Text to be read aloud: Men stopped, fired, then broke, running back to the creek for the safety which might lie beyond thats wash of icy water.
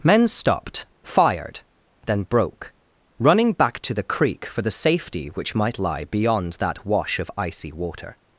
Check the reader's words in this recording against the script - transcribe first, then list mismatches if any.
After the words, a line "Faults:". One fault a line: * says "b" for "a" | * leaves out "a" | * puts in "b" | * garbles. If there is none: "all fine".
Men stopped, fired, then broke, running back to the creek for the safety which might lie beyond that wash of icy water.
Faults:
* says "that" for "thats"